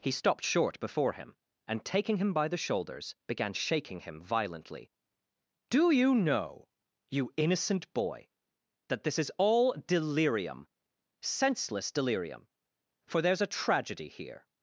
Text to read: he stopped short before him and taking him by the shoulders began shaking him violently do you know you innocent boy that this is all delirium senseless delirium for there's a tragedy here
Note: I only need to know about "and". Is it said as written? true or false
true